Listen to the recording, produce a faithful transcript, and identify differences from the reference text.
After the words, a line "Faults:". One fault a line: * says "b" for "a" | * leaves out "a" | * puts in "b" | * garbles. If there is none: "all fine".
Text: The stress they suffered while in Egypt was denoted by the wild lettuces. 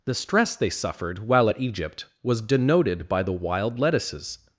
The stress they suffered while at Egypt was denoted by the wild lettuces.
Faults:
* says "at" for "in"